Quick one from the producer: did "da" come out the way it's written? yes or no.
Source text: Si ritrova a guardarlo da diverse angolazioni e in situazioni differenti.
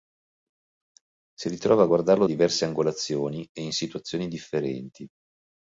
no